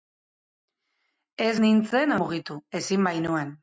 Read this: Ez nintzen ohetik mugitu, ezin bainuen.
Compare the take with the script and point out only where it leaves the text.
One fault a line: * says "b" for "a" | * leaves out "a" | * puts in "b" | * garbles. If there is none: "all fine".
* leaves out "ohetik"